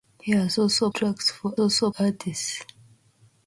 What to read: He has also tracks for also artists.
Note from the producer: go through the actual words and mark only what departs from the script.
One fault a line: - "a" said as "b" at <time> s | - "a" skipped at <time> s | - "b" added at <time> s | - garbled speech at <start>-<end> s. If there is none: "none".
none